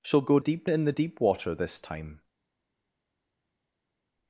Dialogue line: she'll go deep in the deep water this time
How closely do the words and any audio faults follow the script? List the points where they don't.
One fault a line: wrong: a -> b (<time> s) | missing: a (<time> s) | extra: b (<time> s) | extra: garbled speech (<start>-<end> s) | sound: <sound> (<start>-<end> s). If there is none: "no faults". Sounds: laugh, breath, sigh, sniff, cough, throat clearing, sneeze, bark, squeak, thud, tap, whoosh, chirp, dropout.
no faults